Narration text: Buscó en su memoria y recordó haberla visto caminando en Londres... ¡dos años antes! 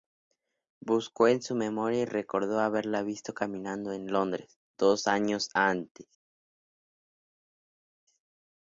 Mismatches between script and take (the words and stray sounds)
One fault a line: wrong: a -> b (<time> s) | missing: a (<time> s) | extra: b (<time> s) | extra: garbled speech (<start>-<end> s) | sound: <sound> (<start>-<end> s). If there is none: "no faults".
no faults